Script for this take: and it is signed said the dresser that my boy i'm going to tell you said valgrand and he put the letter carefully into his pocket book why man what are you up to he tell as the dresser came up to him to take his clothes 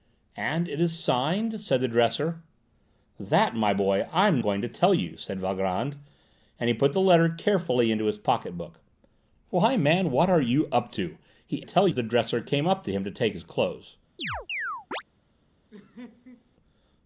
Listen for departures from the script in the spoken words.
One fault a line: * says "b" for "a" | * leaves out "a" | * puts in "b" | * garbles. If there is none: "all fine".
all fine